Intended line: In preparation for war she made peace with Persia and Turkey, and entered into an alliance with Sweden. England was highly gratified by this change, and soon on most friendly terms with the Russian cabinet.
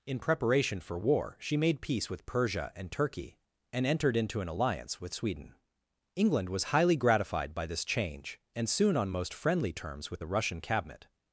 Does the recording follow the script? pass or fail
pass